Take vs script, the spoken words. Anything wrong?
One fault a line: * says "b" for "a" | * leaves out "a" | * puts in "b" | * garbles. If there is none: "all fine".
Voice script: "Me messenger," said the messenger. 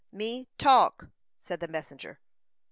* says "talk" for "messenger"